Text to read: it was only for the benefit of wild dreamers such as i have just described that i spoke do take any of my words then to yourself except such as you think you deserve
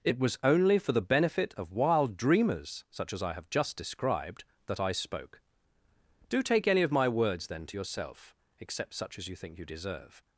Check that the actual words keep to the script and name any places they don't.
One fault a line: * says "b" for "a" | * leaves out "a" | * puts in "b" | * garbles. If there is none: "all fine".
all fine